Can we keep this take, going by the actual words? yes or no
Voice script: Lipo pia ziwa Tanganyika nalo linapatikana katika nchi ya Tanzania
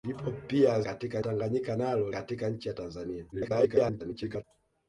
no